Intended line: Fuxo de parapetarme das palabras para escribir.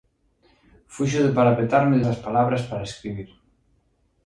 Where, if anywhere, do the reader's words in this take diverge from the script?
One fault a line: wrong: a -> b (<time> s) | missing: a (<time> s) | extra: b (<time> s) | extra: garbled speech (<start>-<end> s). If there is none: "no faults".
no faults